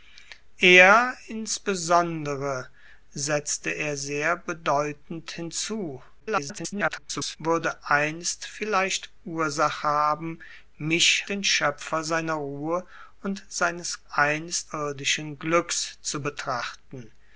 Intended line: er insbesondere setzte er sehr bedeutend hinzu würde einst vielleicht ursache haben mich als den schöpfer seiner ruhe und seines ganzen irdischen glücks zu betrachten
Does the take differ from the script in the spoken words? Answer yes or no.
yes